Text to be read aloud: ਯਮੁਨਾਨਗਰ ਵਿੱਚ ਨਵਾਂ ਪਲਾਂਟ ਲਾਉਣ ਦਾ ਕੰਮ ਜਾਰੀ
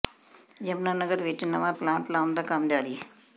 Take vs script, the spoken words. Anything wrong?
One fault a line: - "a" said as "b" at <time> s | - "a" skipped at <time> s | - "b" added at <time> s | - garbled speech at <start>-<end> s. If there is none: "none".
none